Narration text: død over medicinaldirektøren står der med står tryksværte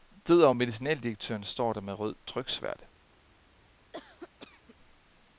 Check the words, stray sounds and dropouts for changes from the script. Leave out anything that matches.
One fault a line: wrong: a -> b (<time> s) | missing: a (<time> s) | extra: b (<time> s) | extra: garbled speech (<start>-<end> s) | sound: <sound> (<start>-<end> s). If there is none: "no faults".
wrong: står -> rød (1.9 s)
sound: cough (3.9-4.8 s)